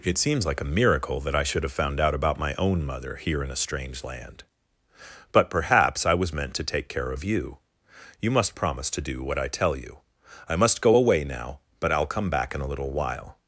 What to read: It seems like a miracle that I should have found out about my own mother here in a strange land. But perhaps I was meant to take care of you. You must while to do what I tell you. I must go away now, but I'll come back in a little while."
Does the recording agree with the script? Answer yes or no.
no